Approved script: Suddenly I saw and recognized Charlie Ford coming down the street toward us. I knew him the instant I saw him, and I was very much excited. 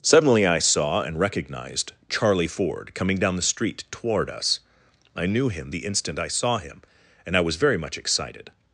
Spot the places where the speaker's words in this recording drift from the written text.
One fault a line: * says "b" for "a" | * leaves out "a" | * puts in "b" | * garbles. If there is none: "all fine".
all fine